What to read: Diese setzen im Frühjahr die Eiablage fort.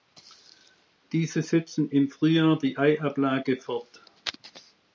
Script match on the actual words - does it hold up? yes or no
yes